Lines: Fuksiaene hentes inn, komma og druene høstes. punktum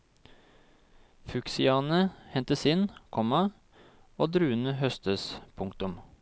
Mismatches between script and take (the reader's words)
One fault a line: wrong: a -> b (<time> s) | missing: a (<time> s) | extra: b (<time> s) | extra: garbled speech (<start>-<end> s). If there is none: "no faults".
no faults